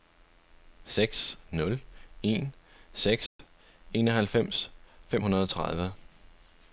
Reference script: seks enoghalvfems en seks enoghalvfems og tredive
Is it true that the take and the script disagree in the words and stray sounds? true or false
true